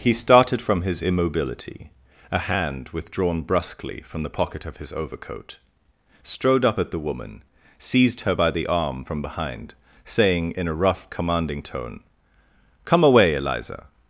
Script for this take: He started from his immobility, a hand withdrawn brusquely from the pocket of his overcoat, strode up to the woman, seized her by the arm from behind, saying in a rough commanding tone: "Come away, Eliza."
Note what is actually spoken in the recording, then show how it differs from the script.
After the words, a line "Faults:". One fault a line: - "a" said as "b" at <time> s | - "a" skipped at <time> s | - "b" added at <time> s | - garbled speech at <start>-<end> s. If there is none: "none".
He started from his immobility, a hand withdrawn brusquely from the pocket of his overcoat, strode up at the woman, seized her by the arm from behind, saying in a rough commanding tone: "Come away, Eliza."
Faults:
- "to" said as "at" at 6.8 s